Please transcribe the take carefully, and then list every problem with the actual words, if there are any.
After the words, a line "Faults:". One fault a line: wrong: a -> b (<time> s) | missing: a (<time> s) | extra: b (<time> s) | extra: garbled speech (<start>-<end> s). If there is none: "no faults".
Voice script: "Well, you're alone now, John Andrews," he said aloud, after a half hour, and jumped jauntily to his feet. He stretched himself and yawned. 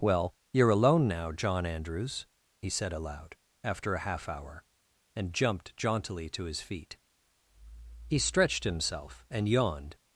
"Well, you're alone now, John Andrews," he said aloud, after a half hour, and jumped jauntily to his feet. He stretched himself and yawned.
Faults:
no faults